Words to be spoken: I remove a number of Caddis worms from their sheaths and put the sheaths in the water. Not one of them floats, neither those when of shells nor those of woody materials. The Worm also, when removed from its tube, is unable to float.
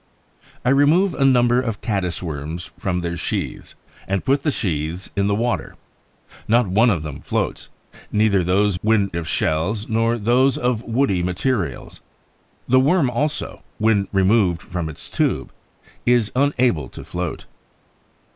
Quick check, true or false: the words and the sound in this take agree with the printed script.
true